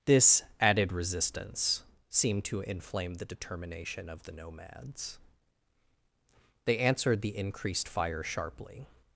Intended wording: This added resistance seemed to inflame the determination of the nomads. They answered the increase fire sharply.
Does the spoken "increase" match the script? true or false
false